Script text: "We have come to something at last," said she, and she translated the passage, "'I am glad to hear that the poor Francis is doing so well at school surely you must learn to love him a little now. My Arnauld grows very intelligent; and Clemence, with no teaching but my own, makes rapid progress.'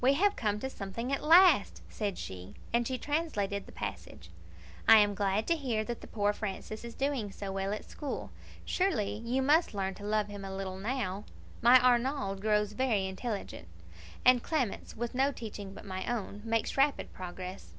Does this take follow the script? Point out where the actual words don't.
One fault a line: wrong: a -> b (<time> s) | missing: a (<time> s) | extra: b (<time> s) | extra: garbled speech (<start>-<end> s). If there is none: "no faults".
no faults